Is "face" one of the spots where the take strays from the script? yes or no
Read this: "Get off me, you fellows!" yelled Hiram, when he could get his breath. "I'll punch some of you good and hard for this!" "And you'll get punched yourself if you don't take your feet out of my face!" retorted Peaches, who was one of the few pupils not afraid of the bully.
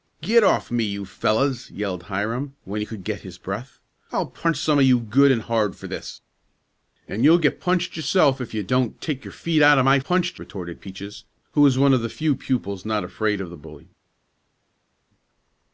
yes